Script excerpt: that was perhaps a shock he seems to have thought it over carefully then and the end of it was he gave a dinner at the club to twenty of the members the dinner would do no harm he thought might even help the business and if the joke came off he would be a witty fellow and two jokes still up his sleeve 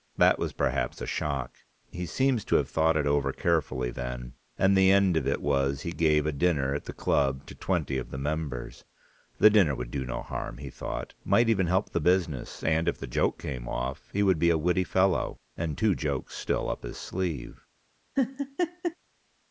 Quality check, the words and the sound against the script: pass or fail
fail